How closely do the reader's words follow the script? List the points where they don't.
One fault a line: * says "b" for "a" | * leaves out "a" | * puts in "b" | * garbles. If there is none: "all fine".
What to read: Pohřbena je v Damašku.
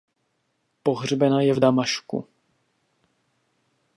all fine